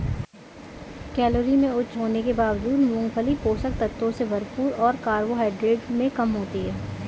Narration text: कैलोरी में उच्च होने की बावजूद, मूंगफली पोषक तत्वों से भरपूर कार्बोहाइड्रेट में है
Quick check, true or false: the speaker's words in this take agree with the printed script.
false